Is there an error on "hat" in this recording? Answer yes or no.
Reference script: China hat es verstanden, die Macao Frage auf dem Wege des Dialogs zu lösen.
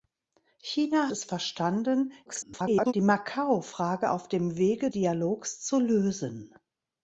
yes